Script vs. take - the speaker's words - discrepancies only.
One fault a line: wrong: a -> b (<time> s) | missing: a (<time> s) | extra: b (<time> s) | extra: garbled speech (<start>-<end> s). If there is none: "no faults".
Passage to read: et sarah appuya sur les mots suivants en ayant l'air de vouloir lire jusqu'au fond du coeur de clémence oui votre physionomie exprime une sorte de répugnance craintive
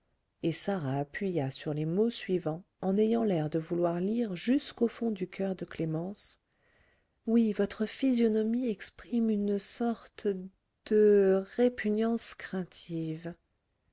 no faults